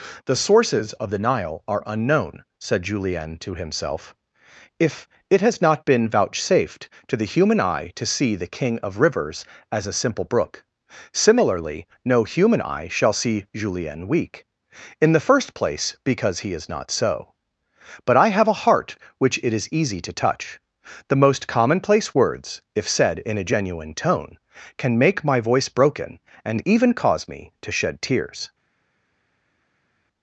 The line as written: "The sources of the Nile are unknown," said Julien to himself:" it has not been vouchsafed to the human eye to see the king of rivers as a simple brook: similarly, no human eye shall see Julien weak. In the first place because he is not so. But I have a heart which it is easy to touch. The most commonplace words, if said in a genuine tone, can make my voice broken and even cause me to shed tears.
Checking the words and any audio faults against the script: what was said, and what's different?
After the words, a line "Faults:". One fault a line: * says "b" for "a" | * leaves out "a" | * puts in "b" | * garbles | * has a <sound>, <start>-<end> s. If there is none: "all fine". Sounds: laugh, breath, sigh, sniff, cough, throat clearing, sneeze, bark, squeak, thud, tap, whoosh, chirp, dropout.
"The sources of the Nile are unknown," said Julien to himself:" if it has not been vouchsafed to the human eye to see the king of rivers as a simple brook: similarly, no human eye shall see Julien weak. In the first place because he is not so. But I have a heart which it is easy to touch. The most commonplace words, if said in a genuine tone, can make my voice broken and even cause me to shed tears.
Faults:
* puts in "if"